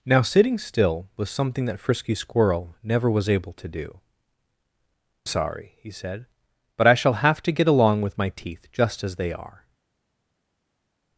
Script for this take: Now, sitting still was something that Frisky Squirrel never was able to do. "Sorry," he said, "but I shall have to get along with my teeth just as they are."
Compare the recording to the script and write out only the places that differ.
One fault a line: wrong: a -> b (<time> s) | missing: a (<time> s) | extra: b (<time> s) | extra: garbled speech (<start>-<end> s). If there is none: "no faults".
no faults